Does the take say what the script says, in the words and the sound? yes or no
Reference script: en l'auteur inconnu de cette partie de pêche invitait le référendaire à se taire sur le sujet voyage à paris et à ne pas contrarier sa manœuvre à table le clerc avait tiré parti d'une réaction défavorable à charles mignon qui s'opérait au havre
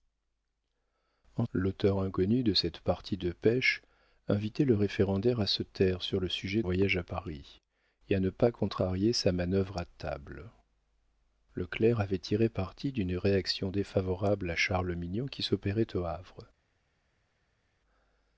yes